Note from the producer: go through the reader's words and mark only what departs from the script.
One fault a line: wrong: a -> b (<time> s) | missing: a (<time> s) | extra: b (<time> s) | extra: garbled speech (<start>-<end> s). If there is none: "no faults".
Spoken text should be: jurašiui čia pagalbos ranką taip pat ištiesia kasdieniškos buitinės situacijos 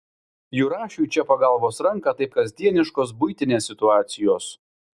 missing: pat ištiesia (2.3 s)